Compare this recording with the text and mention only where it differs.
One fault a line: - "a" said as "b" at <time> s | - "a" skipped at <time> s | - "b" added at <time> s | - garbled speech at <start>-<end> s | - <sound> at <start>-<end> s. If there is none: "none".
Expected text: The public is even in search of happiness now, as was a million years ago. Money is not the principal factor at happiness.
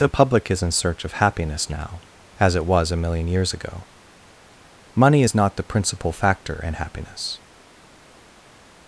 - "even" skipped at 0.6 s
- "it" added at 2.5 s
- "at" said as "in" at 6.6 s